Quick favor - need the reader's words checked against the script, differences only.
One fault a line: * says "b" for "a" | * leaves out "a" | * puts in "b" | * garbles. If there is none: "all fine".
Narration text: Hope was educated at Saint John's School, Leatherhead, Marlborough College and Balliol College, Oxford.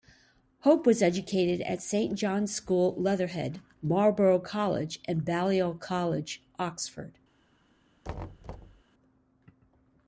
all fine